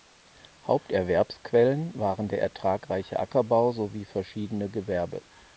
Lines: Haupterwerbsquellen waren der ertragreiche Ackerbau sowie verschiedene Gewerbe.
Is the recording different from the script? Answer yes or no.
no